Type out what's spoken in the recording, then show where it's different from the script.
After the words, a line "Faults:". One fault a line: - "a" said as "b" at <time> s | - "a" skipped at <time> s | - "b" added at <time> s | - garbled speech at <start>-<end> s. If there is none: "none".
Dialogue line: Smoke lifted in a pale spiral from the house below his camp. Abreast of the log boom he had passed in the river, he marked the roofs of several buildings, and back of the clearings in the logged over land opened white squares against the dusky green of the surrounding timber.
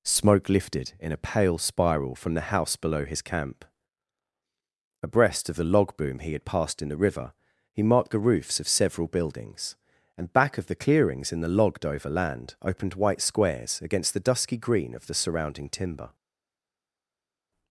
Smoke lifted in a pale spiral from the house below his camp. Abreast of the log boom he had passed in the river, he marked the roofs of several buildings, and back of the clearings in the logged over land opened white squares against the dusky green of the surrounding timber.
Faults:
none